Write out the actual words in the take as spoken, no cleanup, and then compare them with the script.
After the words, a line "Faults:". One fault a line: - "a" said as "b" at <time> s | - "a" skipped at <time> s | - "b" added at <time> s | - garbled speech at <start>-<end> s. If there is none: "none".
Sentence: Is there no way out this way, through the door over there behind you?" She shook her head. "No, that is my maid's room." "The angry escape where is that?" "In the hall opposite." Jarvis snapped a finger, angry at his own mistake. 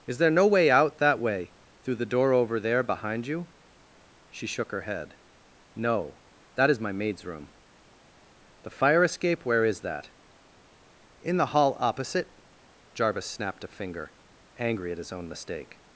Is there no way out that way, through the door over there behind you?" She shook her head. "No, that is my maid's room." "The fire escape where is that?" "In the hall opposite." Jarvis snapped a finger, angry at his own mistake.
Faults:
- "this" said as "that" at 1.0 s
- "angry" said as "fire" at 8.7 s